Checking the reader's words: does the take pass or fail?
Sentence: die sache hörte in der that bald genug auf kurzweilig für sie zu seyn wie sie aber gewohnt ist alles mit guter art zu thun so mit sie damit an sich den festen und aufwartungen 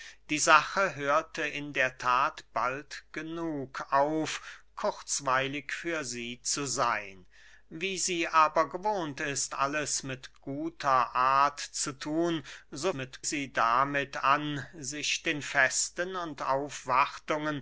pass